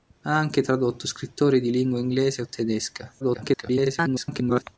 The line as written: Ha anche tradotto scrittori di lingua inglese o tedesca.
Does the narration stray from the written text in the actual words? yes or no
yes